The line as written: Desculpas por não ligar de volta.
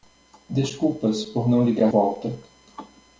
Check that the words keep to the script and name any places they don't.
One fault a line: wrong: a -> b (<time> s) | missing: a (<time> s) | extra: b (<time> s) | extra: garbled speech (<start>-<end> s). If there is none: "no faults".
missing: de (1.9 s)